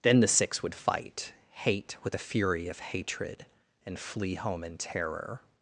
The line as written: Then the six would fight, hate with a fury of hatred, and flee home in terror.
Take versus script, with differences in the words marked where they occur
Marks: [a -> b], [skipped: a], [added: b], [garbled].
Then the six would fight, hate with a fury of hatred, and flee home in terror.